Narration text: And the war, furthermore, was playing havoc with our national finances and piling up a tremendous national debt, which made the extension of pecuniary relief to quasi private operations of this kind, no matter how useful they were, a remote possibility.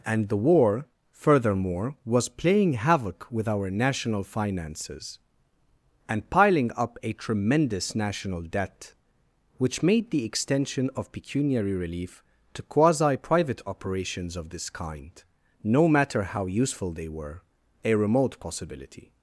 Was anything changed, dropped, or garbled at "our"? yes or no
no